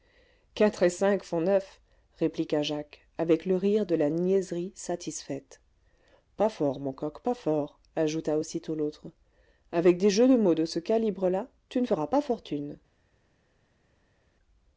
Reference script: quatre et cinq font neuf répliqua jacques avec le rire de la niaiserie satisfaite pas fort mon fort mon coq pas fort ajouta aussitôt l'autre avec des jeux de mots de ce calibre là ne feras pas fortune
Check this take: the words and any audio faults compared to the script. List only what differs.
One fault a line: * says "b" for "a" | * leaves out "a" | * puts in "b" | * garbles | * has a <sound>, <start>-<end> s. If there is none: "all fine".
* leaves out "fort mon"
* puts in "tu"